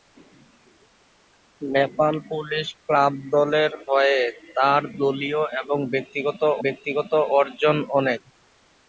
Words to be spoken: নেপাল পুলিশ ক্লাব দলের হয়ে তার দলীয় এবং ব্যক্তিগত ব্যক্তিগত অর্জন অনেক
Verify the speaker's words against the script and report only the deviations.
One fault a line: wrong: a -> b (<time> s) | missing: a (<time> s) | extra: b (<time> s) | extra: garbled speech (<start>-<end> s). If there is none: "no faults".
no faults